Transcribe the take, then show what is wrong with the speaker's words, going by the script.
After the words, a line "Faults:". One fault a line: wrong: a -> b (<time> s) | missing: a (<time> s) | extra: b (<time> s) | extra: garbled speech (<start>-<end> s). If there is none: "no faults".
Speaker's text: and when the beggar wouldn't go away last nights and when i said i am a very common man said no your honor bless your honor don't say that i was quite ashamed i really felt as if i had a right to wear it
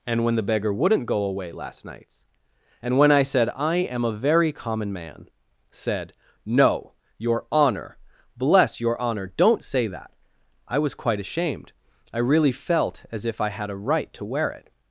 and when the beggar wouldn't go away last nights and when i said i am a very common man said no your honor bless your honor don't say that i was quite ashamed i really felt as if i had a right to wear it
Faults:
no faults